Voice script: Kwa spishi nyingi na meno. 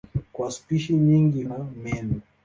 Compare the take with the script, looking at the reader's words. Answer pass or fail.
pass